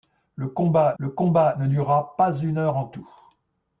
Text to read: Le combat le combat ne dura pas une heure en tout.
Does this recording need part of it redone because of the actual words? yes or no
no